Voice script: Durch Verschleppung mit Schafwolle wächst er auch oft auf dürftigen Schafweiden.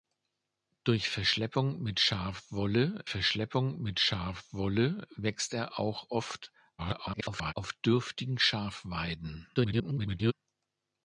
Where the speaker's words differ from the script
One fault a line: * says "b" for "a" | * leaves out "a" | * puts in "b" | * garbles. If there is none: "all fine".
* puts in "Verschleppung mit Schafwolle"
* garbles
* garbles